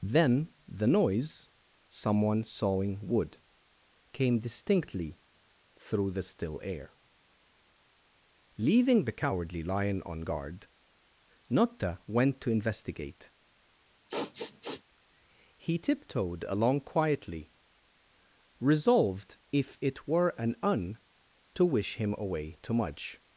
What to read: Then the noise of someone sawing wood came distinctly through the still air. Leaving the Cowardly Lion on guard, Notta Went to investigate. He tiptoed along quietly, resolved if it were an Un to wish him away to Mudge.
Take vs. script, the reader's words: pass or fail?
fail